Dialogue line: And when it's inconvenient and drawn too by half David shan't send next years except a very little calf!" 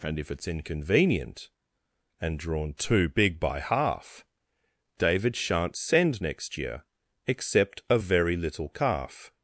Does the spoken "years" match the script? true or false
false